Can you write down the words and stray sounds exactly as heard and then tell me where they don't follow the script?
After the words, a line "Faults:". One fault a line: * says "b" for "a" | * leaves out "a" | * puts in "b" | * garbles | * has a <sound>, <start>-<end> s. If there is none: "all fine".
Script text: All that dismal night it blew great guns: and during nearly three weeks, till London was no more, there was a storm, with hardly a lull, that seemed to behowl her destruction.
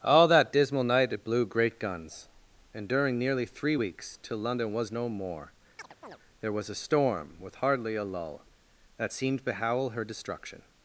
All that dismal night it blew great guns: and during nearly three weeks, till London was no more, there was a storm, with hardly a lull, that seemed behowl her destruction.
Faults:
* has a chirp, 5.8-6.2 s
* leaves out "to"